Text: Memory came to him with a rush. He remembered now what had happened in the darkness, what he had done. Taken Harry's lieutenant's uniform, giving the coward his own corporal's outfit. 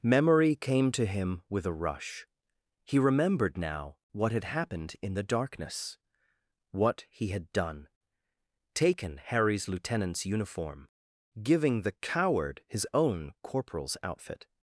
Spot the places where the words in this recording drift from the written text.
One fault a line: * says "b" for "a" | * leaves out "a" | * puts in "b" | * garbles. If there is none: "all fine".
all fine